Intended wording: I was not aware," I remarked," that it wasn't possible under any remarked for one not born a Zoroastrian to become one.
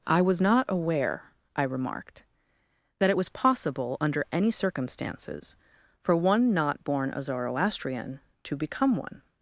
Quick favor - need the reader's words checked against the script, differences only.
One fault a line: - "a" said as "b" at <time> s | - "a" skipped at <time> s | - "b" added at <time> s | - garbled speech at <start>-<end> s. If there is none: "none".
- "wasn't" said as "was" at 3.2 s
- "remarked" said as "circumstances" at 4.5 s